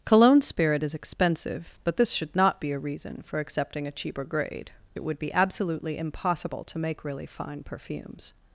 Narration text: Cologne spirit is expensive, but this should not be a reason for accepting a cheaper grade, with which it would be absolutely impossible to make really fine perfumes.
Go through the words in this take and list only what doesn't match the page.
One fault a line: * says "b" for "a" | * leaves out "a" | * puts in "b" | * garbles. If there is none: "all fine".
* leaves out "with which"